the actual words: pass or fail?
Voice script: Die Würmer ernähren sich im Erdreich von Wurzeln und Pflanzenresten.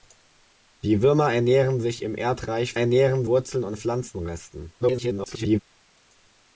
fail